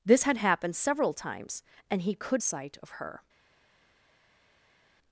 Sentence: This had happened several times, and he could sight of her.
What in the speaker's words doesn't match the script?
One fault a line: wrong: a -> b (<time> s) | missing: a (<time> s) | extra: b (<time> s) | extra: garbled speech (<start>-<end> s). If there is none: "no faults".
no faults